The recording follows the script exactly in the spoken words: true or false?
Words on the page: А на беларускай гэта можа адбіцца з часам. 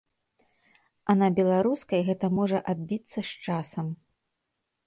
true